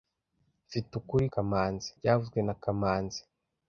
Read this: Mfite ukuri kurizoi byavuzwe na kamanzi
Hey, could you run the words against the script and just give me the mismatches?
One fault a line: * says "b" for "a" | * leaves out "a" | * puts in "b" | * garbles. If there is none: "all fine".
* says "kamanzi" for "kurizoi"